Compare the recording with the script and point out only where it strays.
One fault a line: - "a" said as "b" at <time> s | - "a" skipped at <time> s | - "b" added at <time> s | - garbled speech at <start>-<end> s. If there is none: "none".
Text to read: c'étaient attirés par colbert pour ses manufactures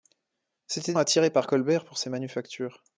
none